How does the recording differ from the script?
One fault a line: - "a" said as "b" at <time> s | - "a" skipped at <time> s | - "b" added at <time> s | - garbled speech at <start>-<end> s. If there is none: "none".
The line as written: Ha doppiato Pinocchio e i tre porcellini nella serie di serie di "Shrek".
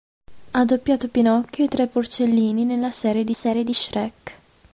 none